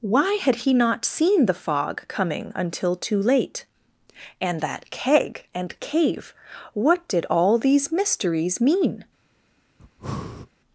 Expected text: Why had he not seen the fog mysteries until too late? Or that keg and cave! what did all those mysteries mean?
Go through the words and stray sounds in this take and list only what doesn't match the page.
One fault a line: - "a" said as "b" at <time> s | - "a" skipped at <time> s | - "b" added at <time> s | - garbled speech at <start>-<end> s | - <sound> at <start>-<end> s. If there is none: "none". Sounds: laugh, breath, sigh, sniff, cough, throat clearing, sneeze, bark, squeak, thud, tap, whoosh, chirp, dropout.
- "mysteries" said as "coming" at 2.1 s
- "Or" said as "And" at 4.4 s
- "those" said as "these" at 7.6 s
- breath at 9.8-10.5 s